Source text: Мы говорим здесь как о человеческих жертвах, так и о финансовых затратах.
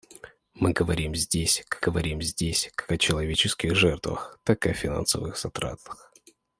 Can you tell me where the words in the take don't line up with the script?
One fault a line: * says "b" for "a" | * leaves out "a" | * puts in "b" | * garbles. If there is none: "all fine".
* puts in "говорим здесь как"